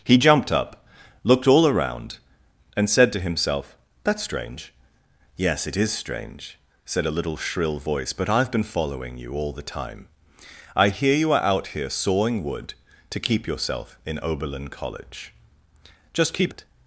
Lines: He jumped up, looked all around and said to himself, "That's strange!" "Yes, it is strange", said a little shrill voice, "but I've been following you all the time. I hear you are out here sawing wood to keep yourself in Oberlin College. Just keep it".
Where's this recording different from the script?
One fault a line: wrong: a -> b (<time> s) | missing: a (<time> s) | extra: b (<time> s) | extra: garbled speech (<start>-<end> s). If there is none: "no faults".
no faults